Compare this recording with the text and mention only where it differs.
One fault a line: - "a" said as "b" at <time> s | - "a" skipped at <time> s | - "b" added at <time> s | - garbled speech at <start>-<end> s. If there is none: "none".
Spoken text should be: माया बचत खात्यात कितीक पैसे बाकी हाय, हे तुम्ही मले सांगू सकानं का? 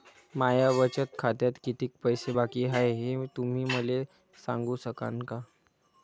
none